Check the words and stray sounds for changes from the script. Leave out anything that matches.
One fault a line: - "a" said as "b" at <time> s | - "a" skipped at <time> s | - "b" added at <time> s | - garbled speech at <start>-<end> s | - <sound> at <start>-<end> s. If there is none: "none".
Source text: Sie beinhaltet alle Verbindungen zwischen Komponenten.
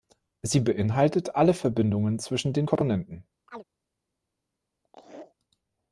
- "den" added at 2.5 s
- chirp at 3.5-3.6 s
- laugh at 4.8-5.4 s